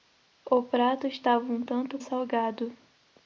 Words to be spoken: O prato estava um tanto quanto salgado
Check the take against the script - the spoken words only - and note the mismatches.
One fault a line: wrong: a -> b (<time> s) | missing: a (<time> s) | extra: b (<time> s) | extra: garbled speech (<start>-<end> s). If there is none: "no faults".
missing: quanto (2.0 s)